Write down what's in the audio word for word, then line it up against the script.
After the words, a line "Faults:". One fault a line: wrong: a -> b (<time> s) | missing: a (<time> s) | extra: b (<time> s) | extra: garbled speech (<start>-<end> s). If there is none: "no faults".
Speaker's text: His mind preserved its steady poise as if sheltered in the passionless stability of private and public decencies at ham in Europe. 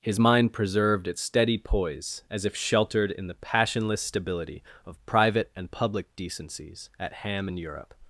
His mind preserved its steady poise as if sheltered in the passionless stability of private and public decencies at ham in Europe.
Faults:
no faults